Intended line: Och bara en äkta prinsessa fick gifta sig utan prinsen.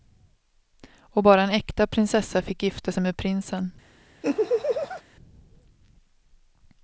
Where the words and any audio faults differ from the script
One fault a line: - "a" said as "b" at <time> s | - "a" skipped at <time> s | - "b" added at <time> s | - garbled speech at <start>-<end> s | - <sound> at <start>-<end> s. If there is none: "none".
- "utan" said as "med" at 3.0 s
- laugh at 4.2-5.0 s